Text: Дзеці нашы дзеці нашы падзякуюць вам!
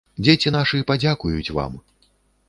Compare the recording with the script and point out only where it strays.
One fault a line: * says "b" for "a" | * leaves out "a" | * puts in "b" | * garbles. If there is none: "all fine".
* leaves out "дзеці нашы"